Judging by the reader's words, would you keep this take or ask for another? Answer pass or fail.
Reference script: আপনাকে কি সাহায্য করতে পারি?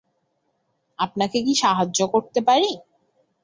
pass